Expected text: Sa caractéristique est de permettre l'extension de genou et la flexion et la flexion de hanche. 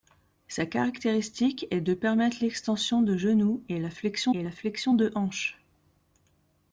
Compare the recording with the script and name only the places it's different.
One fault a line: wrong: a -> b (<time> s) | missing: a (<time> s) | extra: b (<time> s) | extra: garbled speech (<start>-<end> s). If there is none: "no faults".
no faults